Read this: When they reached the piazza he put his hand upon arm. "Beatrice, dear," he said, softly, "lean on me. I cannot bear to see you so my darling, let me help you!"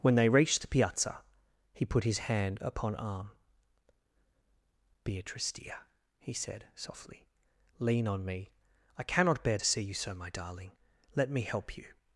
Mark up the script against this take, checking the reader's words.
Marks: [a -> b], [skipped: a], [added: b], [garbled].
When they reached the piazza he put his hand upon arm. "Beatrice, dear," he said, softly, "lean on me. I cannot bear to see you so my darling, let me help you!"